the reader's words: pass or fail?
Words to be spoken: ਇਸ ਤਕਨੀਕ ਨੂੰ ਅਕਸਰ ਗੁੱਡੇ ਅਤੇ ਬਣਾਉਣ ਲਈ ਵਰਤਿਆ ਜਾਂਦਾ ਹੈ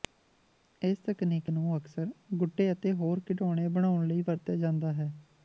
fail